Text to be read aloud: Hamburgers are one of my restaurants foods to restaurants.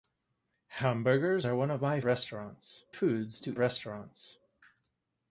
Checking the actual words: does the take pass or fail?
pass